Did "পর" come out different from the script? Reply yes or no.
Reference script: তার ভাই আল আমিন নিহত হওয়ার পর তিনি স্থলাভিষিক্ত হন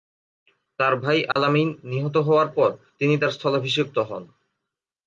no